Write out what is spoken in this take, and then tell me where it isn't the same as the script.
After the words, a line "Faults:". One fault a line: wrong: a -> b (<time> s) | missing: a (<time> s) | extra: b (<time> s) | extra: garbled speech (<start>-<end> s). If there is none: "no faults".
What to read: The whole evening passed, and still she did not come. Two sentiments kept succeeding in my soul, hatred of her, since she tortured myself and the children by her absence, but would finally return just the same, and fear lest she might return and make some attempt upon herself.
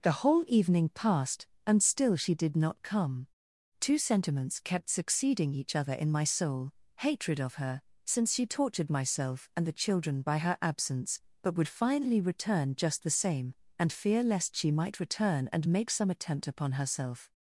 The whole evening passed, and still she did not come. Two sentiments kept succeeding each other in my soul, hatred of her, since she tortured myself and the children by her absence, but would finally return just the same, and fear lest she might return and make some attempt upon herself.
Faults:
extra: each other (5.5 s)